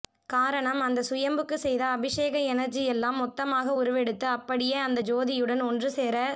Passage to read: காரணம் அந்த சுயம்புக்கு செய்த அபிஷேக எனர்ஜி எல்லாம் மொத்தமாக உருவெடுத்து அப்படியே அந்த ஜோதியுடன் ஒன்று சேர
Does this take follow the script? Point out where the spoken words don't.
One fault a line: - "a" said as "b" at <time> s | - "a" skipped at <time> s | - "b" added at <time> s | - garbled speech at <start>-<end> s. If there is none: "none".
none